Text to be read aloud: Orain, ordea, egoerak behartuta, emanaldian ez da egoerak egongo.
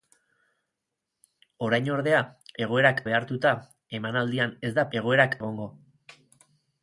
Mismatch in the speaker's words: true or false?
false